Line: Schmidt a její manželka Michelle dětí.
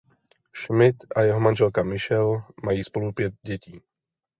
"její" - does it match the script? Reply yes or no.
no